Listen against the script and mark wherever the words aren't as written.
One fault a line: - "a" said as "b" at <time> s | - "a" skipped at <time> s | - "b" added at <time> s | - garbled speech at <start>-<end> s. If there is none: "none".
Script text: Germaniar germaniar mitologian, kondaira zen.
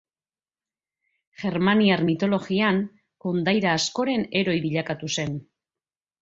- "germaniar" skipped at 2.0 s
- "askoren heroi bilakatu" added at 3.8 s